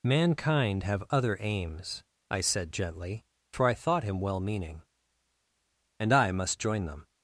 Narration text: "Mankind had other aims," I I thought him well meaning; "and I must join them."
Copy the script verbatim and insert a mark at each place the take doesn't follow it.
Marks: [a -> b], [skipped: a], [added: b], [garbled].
"Mankind [had -> have] other aims," I [added: said gently for] I thought him well meaning; "and I must join them."